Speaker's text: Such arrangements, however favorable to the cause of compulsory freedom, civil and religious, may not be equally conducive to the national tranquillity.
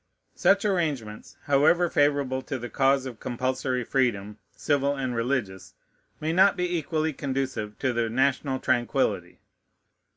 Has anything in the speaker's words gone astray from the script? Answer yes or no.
no